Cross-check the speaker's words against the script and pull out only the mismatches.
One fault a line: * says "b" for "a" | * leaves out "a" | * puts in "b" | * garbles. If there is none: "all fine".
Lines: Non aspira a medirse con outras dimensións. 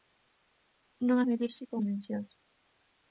* leaves out "aspira"
* leaves out "outras"